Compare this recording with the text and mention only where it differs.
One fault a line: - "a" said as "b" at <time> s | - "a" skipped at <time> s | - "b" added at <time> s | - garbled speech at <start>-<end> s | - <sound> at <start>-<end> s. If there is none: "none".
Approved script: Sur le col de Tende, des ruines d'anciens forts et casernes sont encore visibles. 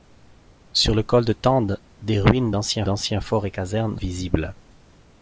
- "d'anciens" added at 2.8 s
- "sont encore" skipped at 4.0 s